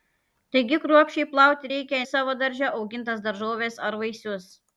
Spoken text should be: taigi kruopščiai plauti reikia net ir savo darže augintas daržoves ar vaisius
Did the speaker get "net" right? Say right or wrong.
wrong